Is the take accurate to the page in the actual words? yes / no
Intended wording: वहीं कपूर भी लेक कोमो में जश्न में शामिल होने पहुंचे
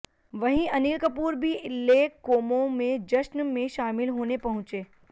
no